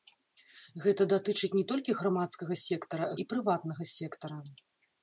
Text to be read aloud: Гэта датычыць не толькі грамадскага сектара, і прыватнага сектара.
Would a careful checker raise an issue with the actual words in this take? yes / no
no